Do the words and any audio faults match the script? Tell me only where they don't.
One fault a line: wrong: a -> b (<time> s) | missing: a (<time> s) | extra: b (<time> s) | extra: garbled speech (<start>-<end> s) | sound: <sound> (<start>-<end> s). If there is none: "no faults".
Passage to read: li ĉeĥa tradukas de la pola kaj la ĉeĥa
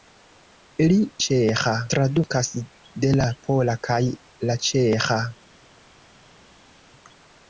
no faults